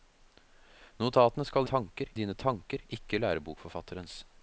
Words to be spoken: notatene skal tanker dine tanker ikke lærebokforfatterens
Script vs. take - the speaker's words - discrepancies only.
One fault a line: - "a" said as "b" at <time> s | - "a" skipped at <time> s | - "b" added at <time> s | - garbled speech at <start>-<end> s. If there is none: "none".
none